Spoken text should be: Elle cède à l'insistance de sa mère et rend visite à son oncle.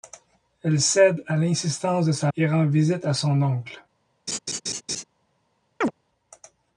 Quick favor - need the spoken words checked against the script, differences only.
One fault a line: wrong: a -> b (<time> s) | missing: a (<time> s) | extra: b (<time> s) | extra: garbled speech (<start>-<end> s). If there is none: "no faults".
missing: mère (2.3 s)